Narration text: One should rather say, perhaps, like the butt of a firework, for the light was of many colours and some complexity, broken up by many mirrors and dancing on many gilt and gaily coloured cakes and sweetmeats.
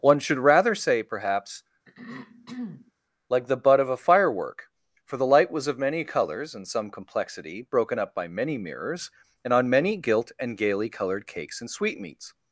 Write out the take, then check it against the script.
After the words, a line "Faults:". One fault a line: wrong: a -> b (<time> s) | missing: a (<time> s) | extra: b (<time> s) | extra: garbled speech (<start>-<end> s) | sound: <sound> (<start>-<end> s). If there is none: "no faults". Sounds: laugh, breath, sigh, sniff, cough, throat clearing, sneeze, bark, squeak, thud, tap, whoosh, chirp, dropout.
One should rather say, perhaps, like the butt of a firework, for the light was of many colours and some complexity, broken up by many mirrors and on many gilt and gaily coloured cakes and sweetmeats.
Faults:
sound: throat clearing (1.9-2.9 s)
missing: dancing (9.5 s)